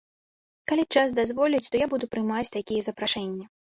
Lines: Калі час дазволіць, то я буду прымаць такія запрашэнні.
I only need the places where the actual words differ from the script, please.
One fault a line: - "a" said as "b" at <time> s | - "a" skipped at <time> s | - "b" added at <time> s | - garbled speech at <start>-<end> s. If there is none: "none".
none